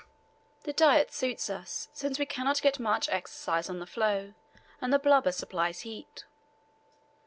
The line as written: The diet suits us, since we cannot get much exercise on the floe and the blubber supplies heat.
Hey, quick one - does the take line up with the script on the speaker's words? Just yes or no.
yes